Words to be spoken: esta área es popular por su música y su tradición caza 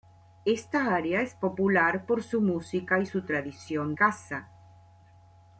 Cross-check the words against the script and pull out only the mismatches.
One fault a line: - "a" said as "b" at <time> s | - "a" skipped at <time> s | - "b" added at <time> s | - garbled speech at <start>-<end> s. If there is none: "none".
none